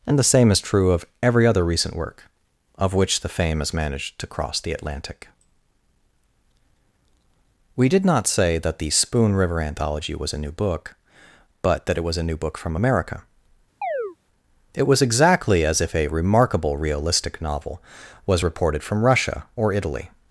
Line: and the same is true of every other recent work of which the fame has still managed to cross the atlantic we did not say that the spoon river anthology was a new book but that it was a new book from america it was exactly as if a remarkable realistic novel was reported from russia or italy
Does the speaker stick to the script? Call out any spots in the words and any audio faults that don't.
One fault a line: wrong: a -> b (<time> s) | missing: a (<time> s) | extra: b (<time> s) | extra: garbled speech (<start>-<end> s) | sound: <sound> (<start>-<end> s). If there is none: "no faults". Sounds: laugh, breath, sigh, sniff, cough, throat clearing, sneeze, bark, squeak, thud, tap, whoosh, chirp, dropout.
missing: still (3.7 s)
sound: chirp (13.8-14.2 s)